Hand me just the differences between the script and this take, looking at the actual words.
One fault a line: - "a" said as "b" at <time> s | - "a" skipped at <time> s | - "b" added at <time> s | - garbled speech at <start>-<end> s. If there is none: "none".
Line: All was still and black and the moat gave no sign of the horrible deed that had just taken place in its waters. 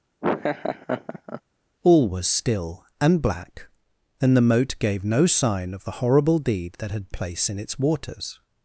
- "just taken" skipped at 7.1 s